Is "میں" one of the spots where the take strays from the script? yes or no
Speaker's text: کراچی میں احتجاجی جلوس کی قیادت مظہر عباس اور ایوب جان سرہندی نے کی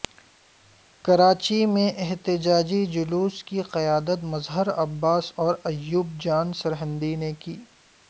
no